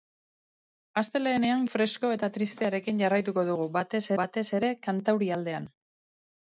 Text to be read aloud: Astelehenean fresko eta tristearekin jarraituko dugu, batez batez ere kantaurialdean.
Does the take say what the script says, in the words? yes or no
yes